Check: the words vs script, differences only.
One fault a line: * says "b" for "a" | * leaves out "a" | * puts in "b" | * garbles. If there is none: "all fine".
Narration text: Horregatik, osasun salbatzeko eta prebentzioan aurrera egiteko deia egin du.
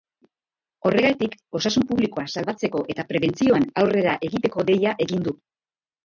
* puts in "publikoa"